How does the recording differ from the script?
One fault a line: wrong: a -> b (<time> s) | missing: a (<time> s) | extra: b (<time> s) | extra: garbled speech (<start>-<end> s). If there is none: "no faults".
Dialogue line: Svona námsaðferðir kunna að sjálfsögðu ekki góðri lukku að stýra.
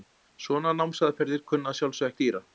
missing: ekki góðri lukku (2.1 s)